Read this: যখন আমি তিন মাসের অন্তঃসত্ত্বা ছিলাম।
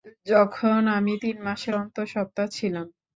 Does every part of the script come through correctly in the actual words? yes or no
yes